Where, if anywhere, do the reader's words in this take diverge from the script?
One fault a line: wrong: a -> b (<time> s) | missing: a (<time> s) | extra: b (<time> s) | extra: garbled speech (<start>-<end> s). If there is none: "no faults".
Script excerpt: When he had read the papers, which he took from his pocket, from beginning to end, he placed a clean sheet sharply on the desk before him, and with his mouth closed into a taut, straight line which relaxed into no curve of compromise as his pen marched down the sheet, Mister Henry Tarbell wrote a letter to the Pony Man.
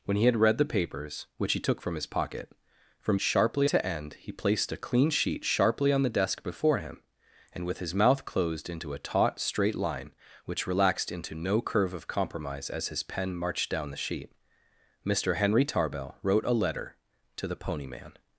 wrong: beginning -> sharply (3.2 s)